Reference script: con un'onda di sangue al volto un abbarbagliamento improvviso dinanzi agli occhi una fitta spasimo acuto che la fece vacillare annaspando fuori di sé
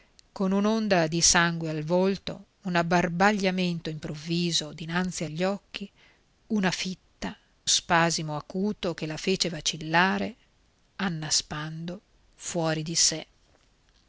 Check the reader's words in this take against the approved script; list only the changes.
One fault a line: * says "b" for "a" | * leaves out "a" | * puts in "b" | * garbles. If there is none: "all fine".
all fine